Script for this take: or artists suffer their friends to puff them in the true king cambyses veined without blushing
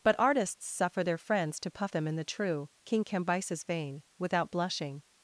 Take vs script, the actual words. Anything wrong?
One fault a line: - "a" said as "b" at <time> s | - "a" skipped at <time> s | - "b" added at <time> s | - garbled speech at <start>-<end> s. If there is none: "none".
- "or" said as "but" at 0.0 s
- "veined" said as "vein" at 3.7 s